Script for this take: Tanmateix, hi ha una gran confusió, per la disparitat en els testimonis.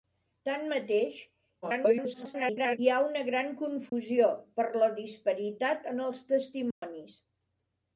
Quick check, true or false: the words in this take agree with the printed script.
false